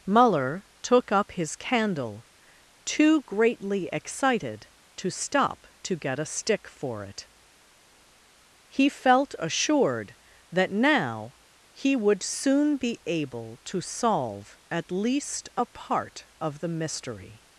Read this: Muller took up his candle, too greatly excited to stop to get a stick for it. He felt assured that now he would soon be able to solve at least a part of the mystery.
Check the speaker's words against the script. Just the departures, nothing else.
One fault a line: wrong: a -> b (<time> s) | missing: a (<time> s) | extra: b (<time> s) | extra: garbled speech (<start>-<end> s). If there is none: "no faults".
no faults